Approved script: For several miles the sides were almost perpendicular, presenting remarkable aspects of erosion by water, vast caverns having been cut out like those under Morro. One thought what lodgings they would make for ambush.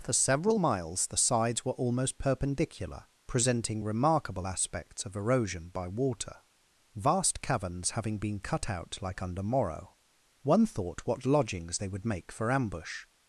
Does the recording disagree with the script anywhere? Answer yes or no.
yes